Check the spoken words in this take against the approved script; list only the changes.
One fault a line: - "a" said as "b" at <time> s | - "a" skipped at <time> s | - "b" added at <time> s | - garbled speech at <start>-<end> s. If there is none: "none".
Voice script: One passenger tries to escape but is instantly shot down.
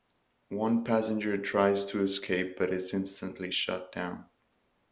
none